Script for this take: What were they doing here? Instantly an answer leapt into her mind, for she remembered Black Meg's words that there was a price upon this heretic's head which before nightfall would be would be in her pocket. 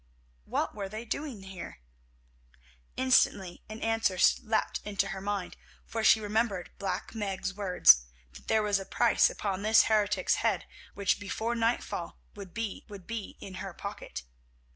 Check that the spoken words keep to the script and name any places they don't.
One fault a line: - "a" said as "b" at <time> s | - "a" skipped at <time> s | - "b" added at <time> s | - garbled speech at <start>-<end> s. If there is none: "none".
none